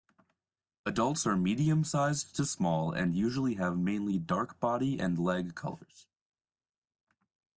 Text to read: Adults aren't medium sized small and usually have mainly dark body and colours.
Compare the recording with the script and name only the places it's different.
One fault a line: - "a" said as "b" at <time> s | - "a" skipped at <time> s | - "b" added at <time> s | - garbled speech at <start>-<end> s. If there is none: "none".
- "aren't" said as "are" at 1.3 s
- "to" added at 2.3 s
- "leg" added at 5.2 s